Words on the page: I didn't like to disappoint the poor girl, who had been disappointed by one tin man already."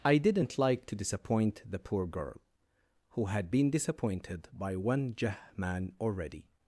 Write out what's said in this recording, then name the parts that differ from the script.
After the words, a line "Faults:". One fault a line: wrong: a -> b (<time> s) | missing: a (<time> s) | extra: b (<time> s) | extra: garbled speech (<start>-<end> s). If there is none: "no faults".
I didn't like to disappoint the poor girl, who had been disappointed by one jah man already."
Faults:
wrong: tin -> jah (5.2 s)